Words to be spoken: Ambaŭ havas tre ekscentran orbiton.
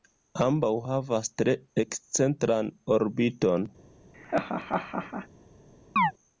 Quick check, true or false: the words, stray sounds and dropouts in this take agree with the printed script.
false